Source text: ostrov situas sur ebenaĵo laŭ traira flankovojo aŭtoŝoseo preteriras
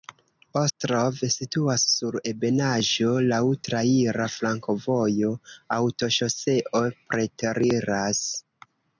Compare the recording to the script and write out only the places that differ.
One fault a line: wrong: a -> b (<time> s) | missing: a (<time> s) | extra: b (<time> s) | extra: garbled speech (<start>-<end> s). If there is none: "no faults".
no faults